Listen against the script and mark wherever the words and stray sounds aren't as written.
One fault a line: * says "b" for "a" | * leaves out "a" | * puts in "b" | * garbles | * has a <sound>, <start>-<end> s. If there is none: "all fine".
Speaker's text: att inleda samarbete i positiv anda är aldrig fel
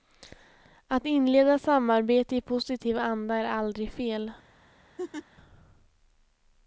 * has a laugh, 5.0-5.3 s